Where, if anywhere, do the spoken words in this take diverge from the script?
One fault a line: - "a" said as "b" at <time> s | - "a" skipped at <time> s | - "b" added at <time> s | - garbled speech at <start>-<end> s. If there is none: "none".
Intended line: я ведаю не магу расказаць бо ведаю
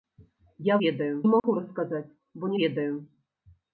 none